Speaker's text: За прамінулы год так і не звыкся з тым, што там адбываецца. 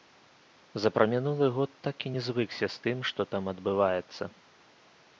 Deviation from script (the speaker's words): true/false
false